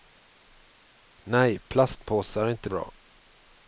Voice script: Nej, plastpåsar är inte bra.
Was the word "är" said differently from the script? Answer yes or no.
no